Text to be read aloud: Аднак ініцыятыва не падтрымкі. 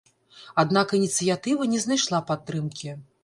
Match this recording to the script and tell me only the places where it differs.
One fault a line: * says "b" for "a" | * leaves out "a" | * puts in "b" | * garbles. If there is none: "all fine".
* puts in "знайшла"